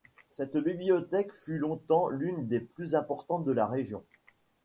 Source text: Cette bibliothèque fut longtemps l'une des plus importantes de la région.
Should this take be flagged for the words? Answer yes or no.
no